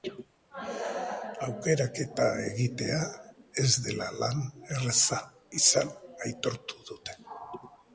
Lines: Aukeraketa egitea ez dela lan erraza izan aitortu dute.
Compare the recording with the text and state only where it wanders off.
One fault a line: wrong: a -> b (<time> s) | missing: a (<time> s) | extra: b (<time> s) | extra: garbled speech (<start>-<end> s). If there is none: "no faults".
no faults